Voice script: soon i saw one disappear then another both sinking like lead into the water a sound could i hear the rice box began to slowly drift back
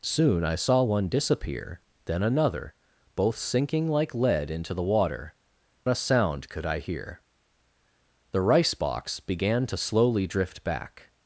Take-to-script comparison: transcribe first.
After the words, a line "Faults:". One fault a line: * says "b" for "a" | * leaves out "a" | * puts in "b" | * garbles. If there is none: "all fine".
soon i saw one disappear then another both sinking like lead into the water a sound could i hear the rice box began to slowly drift back
Faults:
all fine